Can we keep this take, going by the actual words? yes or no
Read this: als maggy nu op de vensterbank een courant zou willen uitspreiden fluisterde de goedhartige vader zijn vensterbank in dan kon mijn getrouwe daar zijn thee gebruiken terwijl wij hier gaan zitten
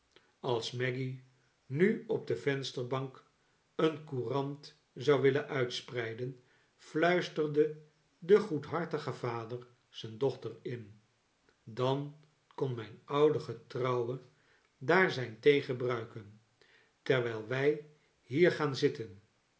no